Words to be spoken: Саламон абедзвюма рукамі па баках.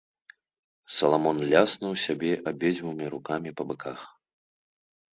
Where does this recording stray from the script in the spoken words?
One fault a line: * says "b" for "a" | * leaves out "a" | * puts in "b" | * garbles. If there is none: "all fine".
* puts in "ляснуў сябе"